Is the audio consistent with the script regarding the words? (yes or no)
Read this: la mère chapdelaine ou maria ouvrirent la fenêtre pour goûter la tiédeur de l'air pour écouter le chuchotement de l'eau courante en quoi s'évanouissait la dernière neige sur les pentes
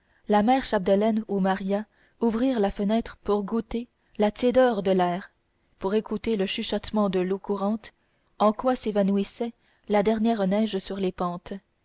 yes